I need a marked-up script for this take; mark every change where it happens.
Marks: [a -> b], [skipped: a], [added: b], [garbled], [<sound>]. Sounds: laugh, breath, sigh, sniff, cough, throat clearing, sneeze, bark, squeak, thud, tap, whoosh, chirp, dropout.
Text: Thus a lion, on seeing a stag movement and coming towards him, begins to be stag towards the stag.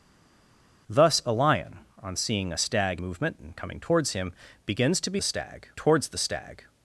Thus a lion, on seeing a stag movement and coming towards him, begins to be stag towards the stag.